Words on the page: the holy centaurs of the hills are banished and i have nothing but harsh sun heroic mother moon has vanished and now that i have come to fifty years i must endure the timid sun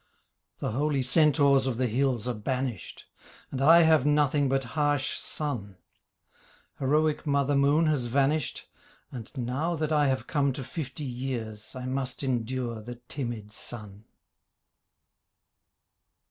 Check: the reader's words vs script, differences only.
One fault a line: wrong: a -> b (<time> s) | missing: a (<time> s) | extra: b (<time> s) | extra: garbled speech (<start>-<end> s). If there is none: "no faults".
no faults